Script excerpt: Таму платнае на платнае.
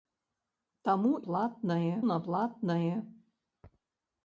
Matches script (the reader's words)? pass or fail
pass